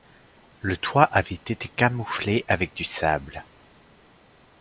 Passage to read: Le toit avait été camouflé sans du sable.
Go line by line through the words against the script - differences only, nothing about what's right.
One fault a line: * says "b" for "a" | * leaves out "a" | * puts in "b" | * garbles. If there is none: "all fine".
* says "avec" for "sans"